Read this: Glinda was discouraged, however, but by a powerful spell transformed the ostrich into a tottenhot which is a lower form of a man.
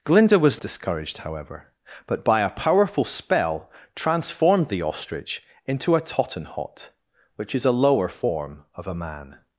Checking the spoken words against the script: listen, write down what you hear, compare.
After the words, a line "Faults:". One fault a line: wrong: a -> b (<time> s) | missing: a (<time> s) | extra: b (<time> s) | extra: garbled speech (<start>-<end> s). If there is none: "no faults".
Glinda was discouraged, however, but by a powerful spell transformed the ostrich into a tottenhot which is a lower form of a man.
Faults:
no faults